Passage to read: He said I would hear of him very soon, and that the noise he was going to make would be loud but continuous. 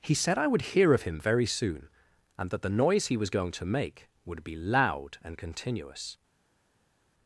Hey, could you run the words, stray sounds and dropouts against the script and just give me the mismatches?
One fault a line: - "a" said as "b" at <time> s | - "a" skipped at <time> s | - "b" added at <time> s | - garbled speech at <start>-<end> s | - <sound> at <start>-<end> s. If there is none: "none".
- "but" said as "and" at 5.2 s